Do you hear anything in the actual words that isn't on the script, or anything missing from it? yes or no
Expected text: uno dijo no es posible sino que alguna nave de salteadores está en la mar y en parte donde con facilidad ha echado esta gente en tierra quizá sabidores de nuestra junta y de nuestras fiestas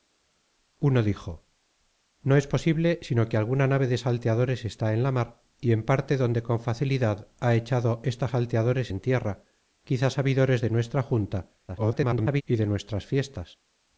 yes